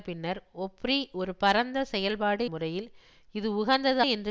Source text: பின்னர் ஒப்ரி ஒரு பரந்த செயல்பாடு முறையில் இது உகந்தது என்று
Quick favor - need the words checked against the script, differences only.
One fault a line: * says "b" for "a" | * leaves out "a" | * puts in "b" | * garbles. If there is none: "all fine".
all fine